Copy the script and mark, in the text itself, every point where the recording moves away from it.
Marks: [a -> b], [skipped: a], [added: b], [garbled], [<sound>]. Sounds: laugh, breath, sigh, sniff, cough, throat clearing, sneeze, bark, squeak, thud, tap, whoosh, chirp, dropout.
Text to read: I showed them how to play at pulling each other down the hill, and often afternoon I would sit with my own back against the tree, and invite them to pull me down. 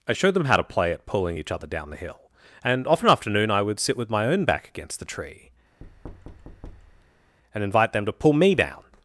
I showed them how to play at pulling each other down the hill, and often afternoon I would sit with my own back against the tree, [thud] and invite them to pull me down.